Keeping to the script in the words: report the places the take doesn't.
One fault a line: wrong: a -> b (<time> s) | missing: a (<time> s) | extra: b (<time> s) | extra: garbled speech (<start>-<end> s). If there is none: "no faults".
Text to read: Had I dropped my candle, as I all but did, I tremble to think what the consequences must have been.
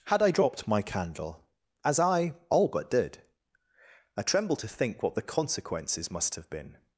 no faults